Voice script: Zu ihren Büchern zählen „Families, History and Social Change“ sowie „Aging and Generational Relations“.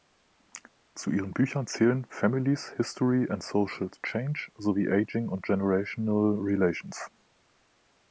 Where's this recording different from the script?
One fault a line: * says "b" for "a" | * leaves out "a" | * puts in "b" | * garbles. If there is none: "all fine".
all fine